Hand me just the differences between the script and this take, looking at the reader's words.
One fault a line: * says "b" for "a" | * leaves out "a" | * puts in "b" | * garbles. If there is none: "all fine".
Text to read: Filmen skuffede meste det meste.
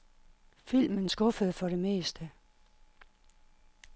* says "for" for "meste"